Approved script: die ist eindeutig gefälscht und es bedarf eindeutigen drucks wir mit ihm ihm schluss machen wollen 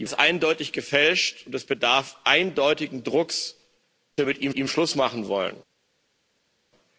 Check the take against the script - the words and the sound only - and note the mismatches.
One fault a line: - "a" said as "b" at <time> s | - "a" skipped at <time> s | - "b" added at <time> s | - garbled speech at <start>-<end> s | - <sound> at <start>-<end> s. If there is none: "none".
none